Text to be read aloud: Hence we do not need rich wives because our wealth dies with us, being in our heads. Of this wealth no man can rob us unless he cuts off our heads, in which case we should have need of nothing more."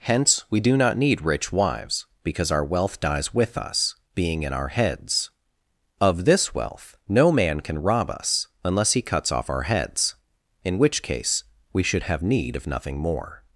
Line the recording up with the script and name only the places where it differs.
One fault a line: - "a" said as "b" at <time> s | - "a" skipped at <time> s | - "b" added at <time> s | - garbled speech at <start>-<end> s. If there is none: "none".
none